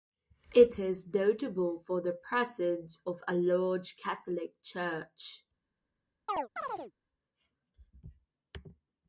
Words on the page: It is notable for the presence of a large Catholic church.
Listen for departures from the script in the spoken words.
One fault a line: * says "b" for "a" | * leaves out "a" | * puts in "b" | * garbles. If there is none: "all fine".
all fine